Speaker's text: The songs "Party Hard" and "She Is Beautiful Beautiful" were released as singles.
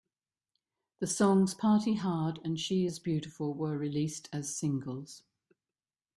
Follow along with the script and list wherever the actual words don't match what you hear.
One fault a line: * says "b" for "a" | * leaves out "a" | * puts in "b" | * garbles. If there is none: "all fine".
* leaves out "Beautiful"